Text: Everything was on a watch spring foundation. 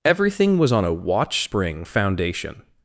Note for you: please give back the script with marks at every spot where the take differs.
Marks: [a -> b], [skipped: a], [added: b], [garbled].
Everything was on a watch spring foundation.